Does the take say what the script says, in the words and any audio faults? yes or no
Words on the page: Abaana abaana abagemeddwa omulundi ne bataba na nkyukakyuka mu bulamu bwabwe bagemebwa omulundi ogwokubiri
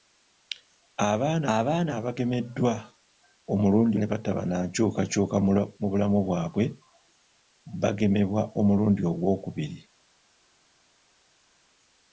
yes